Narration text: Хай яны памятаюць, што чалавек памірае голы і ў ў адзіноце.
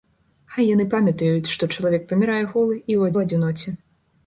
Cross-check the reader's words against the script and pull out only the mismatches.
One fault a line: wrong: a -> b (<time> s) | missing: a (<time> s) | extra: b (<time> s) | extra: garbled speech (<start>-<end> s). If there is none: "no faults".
no faults